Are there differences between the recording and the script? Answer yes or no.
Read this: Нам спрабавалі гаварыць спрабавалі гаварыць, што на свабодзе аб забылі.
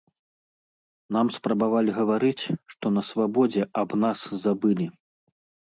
yes